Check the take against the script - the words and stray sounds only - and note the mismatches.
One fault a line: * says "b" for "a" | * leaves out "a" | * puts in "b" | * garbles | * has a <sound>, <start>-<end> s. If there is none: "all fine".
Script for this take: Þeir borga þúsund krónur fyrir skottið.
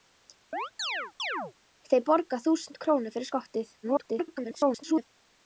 * has a chirp, 0.5-1.5 s
* garbles